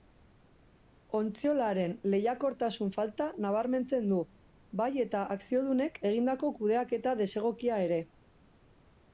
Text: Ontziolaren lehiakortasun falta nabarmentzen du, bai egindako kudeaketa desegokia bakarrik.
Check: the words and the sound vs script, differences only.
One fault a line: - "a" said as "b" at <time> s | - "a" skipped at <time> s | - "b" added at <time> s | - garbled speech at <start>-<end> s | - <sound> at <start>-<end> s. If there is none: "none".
- "eta akziodunek" added at 5.1 s
- "bakarrik" said as "ere" at 7.9 s